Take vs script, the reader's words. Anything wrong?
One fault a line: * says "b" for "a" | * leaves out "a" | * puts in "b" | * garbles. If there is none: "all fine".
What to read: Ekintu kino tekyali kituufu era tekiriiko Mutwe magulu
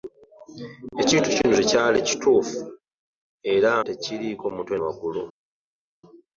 all fine